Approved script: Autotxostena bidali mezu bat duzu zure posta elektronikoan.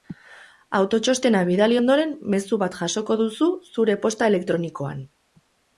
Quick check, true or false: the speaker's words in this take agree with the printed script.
false